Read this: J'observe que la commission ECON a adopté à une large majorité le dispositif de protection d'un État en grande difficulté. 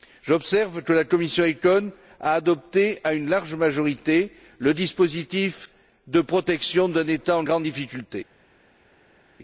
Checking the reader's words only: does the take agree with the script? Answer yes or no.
yes